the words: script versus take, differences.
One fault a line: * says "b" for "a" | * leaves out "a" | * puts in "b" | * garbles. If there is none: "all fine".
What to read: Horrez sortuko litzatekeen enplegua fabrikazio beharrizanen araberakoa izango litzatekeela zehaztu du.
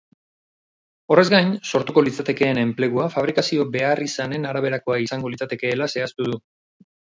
* puts in "gain"